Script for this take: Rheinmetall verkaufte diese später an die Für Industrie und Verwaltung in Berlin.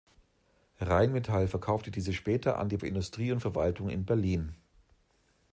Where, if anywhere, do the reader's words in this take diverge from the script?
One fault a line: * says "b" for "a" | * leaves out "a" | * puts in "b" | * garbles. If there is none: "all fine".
all fine